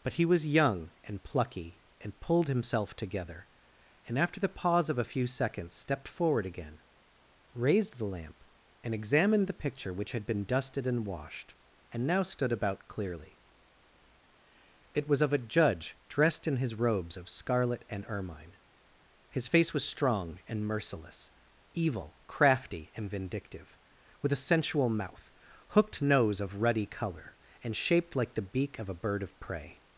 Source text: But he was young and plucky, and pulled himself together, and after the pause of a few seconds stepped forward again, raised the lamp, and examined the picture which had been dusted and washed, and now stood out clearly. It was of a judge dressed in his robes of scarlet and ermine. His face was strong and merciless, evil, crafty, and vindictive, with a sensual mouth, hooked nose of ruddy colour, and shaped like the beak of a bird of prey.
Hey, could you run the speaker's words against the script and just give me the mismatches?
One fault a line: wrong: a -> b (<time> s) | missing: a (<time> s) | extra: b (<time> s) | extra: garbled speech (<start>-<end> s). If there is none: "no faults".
wrong: out -> about (12.5 s)